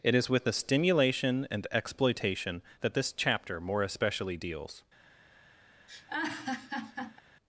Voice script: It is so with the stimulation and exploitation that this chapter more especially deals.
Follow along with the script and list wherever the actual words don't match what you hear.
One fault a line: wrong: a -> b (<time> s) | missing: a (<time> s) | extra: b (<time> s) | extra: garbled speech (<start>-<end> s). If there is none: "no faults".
missing: so (0.3 s)